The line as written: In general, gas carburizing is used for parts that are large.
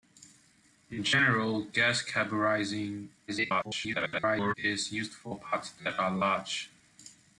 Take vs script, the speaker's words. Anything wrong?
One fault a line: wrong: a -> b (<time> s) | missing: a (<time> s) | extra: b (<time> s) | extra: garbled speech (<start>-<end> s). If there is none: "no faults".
extra: garbled speech (3.3-4.5 s)